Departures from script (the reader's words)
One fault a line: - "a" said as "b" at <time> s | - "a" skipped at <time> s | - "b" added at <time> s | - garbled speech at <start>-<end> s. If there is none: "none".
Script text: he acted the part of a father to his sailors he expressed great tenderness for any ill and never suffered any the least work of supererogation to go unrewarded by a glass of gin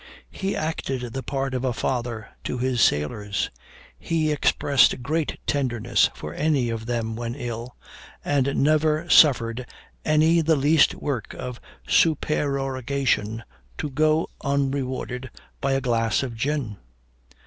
- "of them when" added at 6.7 s